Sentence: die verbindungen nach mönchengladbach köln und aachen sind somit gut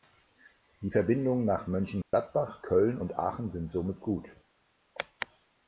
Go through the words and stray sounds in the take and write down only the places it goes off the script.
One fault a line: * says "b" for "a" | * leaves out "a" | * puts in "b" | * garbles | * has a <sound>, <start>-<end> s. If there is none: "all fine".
* has a dropout, 2.0-2.1 s